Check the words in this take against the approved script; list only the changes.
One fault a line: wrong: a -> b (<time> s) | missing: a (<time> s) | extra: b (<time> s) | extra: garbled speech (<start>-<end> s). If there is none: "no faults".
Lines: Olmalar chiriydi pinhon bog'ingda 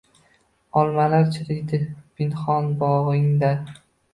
no faults